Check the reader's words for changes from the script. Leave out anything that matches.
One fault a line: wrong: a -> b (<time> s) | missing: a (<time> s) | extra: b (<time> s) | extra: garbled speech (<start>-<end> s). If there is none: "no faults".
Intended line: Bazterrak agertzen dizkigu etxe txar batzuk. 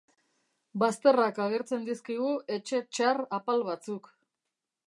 extra: apal (3.4 s)